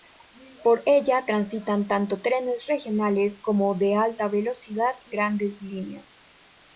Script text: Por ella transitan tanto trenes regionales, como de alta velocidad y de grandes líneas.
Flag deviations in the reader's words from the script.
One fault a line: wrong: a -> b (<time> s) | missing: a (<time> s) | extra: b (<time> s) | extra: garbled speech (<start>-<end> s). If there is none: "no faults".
missing: de (5.2 s)